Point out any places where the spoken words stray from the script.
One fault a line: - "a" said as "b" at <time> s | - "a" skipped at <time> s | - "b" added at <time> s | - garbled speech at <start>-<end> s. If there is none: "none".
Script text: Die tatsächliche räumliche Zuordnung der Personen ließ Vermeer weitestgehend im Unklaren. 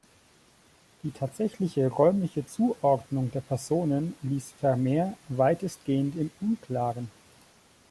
none